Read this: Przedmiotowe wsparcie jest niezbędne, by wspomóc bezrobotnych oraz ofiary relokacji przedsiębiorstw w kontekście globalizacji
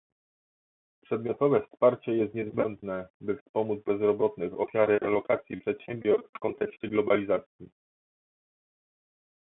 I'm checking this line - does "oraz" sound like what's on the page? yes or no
no